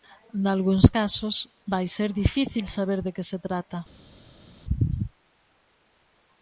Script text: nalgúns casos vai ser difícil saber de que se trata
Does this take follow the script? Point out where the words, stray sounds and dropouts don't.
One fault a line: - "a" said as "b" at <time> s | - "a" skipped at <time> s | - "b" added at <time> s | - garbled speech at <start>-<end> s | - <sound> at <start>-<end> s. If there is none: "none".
none